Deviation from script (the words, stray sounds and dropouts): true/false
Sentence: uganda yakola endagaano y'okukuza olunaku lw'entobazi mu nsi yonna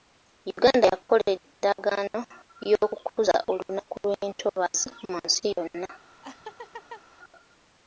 true